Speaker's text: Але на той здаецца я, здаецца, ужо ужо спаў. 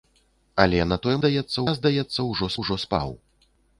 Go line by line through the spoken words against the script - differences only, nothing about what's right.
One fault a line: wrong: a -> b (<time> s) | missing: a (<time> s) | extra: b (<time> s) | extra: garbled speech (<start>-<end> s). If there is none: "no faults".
no faults